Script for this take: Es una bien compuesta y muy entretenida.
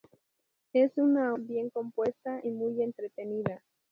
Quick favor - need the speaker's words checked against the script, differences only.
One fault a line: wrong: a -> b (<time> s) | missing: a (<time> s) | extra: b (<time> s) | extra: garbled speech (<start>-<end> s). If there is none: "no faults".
no faults